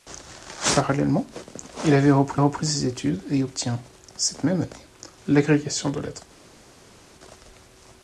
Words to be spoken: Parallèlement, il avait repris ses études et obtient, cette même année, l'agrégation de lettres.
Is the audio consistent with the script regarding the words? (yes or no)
no